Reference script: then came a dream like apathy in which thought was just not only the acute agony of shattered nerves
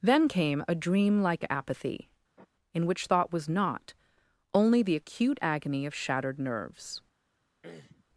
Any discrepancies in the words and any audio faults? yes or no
yes